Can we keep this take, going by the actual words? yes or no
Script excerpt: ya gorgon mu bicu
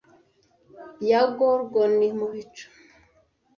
yes